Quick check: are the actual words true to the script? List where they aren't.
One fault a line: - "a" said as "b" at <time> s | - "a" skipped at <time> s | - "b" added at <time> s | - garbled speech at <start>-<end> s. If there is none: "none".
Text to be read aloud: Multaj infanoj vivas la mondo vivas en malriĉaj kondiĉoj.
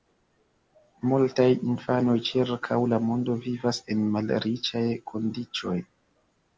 - "vivas" said as "ĉirkaŭ" at 2.3 s